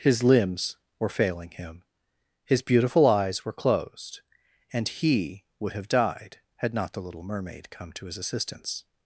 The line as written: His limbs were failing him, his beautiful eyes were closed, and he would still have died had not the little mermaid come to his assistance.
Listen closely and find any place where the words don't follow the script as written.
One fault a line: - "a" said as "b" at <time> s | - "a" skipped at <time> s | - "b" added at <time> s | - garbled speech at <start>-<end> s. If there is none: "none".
- "still" skipped at 5.7 s